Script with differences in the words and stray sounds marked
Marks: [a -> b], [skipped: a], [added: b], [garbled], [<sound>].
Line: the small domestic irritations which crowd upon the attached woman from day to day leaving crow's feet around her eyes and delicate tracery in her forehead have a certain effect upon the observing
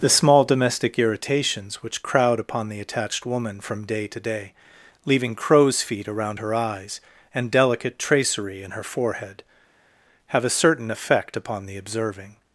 the small domestic irritations which crowd upon the attached woman from day to day leaving crow's feet around her eyes and delicate tracery in her forehead have a certain effect upon the observing